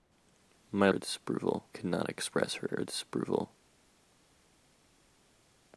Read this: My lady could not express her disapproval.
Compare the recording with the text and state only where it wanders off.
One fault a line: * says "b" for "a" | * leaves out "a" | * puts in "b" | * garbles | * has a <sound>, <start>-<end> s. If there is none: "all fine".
* says "disapproval" for "lady"
* puts in "her"